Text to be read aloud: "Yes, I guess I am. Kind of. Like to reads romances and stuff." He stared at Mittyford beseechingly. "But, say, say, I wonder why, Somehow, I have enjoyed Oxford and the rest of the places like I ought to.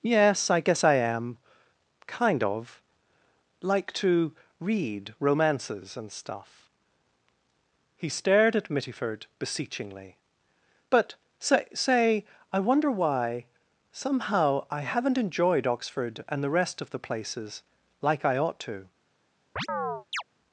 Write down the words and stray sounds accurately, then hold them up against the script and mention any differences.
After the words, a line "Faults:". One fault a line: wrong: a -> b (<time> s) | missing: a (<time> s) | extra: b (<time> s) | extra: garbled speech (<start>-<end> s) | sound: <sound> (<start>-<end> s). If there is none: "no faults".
"Yes, I guess I am. Kind of. Like to read romances and stuff." He stared at Mittyford beseechingly. "But, say, say, I wonder why, Somehow, I haven't enjoyed Oxford and the rest of the places like I ought to.
Faults:
wrong: reads -> read (4.6 s)
wrong: have -> haven't (14.8 s)
sound: chirp (19.6-20.2 s)